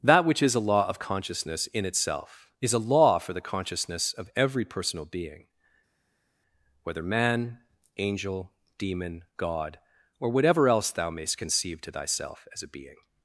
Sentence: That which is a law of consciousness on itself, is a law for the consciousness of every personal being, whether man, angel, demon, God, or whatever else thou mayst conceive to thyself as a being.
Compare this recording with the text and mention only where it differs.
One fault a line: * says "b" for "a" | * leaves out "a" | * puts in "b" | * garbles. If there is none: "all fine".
* says "in" for "on"